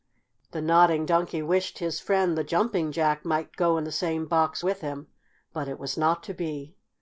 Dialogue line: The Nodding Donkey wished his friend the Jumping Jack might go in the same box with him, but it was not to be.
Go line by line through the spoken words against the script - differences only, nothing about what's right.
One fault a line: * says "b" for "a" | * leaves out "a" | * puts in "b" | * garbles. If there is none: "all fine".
all fine